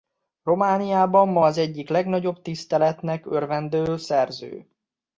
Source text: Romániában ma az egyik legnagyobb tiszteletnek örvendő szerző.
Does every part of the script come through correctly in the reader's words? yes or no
yes